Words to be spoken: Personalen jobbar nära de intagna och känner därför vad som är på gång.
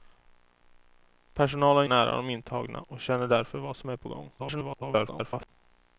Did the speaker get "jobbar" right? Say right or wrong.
wrong